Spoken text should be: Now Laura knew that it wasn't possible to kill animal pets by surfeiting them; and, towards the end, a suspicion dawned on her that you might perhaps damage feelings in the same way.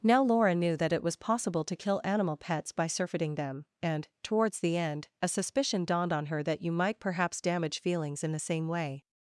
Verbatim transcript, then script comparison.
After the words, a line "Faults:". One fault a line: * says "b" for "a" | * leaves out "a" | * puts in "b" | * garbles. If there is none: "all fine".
Now Laura knew that it was possible to kill animal pets by surfeiting them; and, towards the end, a suspicion dawned on her that you might perhaps damage feelings in the same way.
Faults:
* says "was" for "wasn't"